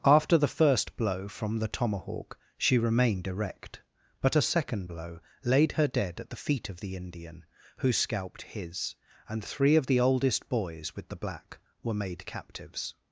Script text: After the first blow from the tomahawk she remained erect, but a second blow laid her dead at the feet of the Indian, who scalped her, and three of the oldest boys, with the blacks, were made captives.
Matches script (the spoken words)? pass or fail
fail